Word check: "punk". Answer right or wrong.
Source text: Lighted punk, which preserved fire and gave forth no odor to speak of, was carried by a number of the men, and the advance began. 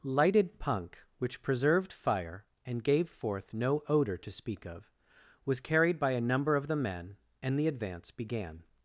right